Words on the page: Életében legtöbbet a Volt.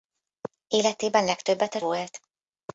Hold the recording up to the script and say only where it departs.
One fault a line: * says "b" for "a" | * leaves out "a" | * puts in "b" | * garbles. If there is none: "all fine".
all fine